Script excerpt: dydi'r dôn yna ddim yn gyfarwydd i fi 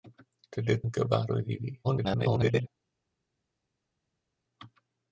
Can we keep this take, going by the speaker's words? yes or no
no